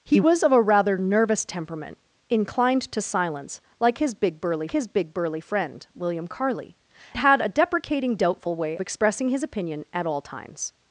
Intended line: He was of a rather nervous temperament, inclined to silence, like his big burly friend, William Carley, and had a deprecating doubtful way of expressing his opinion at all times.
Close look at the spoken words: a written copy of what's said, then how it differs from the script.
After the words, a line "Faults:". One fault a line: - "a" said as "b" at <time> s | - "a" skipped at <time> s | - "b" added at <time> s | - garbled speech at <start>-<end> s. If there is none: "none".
He was of a rather nervous temperament, inclined to silence, like his big burly his big burly friend, William Carley, had a deprecating doubtful way expressing his opinion at all times.
Faults:
- "his big burly" added at 4.7 s
- "and" skipped at 6.8 s
- "of" skipped at 8.8 s